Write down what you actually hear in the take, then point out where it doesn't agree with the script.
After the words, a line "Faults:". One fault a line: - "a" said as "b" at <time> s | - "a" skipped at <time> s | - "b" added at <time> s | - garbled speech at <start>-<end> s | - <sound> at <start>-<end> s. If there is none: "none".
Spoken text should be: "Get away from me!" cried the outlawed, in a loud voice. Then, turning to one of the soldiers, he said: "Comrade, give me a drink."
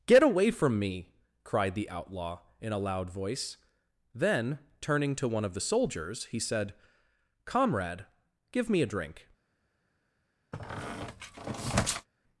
"Get away from me!" cried the outlaw, in a loud voice. Then, turning to one of the soldiers, he said: "Comrade, give me a drink."
Faults:
- "outlawed" said as "outlaw" at 1.9 s
- squeak at 10.5-12.1 s